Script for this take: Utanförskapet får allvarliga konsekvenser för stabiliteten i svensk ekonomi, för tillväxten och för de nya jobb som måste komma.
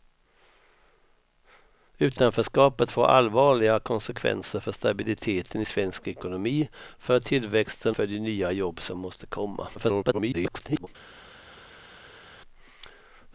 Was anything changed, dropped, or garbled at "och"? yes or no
yes